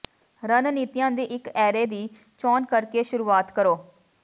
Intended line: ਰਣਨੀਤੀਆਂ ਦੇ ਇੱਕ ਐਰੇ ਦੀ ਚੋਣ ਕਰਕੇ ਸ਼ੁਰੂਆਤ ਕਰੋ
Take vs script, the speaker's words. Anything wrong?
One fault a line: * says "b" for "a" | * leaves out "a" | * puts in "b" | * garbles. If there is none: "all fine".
* says "ਦੀ" for "ਦੇ"